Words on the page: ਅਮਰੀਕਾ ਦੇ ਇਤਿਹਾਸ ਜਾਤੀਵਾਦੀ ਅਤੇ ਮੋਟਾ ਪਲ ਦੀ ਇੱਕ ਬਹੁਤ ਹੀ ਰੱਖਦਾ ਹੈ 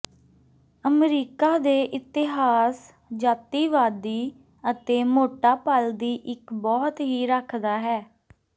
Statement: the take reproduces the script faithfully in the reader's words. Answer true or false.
true